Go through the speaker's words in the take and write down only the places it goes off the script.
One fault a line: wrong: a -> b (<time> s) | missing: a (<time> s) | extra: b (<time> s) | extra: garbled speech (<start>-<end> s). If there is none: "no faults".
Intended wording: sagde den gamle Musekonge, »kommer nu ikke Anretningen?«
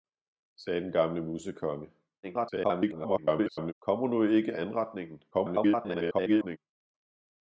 extra: garbled speech (2.2-3.7 s)
extra: garbled speech (5.3-6.6 s)